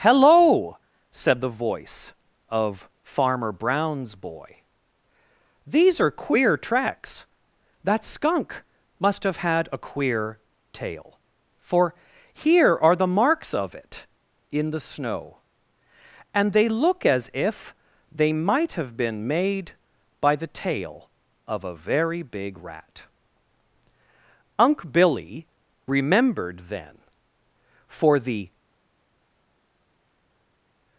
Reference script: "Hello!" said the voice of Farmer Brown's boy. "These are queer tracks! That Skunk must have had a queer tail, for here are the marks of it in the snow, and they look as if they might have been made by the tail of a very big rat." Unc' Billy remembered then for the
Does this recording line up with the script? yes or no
yes